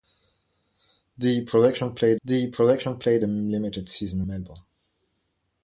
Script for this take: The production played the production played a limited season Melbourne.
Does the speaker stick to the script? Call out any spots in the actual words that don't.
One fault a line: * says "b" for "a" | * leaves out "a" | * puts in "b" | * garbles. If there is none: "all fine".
all fine